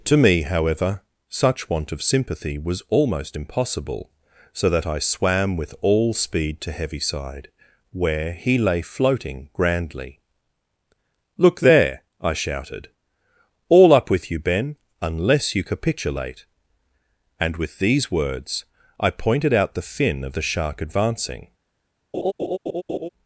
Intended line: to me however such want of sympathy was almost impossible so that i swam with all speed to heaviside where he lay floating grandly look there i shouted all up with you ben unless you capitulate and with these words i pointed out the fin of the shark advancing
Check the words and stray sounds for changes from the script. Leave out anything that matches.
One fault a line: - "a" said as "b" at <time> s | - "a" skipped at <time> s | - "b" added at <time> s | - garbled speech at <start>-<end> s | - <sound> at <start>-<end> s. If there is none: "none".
- laugh at 22.1-23.1 s